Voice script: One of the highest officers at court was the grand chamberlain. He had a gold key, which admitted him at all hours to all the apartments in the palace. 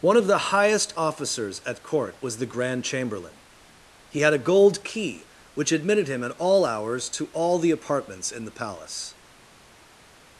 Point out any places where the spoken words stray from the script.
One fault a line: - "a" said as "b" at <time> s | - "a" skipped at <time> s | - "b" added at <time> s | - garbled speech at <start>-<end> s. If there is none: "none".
none